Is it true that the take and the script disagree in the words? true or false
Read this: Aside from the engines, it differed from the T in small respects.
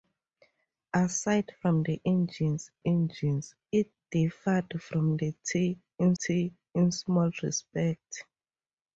true